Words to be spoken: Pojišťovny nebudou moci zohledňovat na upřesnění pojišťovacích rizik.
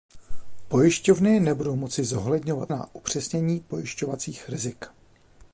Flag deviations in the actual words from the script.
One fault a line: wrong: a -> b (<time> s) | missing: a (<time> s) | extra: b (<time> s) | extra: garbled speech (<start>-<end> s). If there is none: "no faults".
no faults